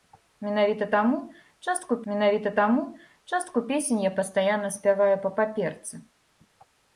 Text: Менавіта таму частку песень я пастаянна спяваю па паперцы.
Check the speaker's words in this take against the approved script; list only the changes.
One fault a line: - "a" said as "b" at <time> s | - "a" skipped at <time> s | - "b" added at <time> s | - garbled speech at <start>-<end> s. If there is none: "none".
- "менавіта таму частку" added at 2.1 s